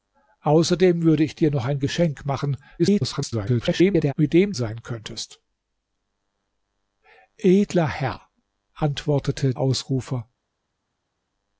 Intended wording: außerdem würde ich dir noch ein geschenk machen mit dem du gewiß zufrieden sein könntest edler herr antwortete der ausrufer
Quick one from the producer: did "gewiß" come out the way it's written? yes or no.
no